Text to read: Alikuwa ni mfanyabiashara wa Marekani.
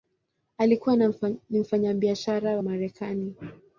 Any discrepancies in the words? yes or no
yes